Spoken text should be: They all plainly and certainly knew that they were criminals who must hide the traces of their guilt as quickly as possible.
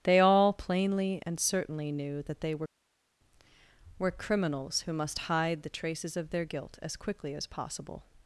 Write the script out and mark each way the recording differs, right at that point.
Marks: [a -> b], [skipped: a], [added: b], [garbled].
They all plainly and certainly knew that they were [added: were] criminals who must hide the traces of their guilt as quickly as possible.